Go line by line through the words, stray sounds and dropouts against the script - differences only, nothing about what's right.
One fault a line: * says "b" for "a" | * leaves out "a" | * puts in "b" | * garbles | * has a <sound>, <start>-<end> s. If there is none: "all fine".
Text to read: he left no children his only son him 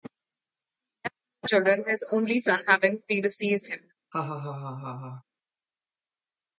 * puts in "having predeceased"
* has a laugh, 4.1-5.2 s